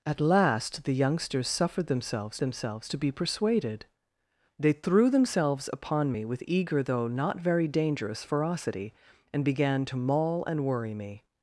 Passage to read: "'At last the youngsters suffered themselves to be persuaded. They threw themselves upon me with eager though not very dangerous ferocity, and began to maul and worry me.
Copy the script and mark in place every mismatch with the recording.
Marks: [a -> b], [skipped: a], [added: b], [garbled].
"'At last the youngsters suffered themselves [added: themselves] to be persuaded. They threw themselves upon me with eager though not very dangerous ferocity, and began to maul and worry me.